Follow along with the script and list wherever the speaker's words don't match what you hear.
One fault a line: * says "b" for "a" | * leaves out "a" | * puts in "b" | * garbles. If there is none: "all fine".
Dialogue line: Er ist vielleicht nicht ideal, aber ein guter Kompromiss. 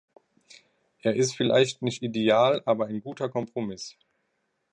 all fine